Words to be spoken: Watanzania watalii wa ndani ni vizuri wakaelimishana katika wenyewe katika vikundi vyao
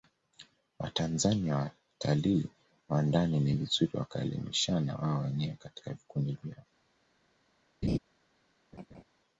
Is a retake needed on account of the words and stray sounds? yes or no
yes